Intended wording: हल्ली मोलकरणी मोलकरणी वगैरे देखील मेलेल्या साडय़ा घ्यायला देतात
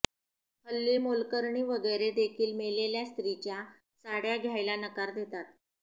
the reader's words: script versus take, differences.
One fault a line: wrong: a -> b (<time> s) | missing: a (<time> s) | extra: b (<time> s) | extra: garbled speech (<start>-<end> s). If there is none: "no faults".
missing: मोलकरणी (1.6 s)
extra: स्त्रीच्या (3.1 s)
extra: नकार (4.8 s)